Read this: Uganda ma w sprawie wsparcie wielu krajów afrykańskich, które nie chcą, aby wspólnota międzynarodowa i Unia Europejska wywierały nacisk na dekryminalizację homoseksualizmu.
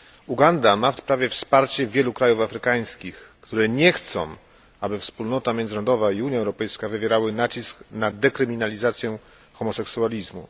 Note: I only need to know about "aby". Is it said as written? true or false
true